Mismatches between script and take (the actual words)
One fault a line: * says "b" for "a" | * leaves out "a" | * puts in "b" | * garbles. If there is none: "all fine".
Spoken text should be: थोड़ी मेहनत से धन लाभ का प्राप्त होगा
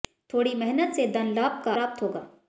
all fine